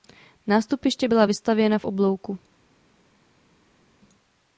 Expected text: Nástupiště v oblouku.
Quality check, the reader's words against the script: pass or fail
fail